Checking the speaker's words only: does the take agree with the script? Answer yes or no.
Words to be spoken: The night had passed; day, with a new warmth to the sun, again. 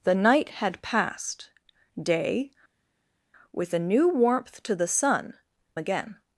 yes